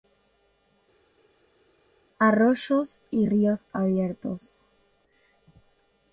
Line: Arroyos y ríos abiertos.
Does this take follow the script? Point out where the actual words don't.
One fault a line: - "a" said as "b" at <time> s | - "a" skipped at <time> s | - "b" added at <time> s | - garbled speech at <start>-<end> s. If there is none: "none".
none